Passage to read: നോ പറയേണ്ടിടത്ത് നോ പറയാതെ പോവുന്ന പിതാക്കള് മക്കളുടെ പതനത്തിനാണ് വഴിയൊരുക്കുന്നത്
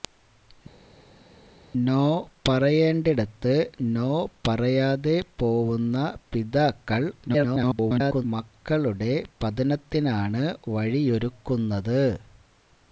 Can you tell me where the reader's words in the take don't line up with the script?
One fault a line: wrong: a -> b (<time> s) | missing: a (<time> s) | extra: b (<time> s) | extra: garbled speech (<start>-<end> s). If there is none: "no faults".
extra: garbled speech (7.3-8.2 s)